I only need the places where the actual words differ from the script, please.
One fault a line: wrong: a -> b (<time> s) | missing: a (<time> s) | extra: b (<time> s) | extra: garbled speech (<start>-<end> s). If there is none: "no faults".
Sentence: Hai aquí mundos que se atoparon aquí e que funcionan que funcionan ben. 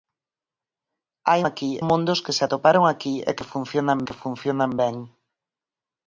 no faults